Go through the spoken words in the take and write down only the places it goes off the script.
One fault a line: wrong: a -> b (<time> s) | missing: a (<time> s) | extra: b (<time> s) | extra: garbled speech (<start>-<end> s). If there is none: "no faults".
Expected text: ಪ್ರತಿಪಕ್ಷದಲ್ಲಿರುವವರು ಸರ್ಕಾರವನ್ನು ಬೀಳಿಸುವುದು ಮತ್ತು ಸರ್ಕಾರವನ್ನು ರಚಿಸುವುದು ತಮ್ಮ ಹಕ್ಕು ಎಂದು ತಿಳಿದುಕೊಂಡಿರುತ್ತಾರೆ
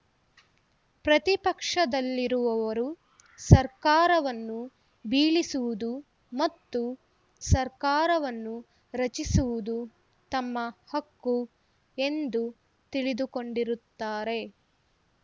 no faults